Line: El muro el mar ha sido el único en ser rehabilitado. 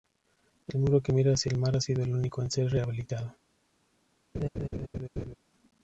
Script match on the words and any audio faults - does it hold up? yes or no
no